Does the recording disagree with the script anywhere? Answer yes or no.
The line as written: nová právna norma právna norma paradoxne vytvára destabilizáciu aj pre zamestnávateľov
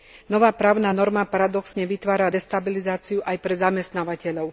yes